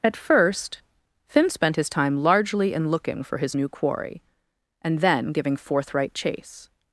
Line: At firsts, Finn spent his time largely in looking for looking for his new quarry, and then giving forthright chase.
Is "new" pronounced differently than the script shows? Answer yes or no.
no